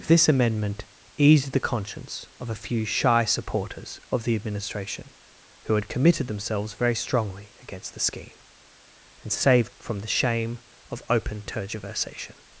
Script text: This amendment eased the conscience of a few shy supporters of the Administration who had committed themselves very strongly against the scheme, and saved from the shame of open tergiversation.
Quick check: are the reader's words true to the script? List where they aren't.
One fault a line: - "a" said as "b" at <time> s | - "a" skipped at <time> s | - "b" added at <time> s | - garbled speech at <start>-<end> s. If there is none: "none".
none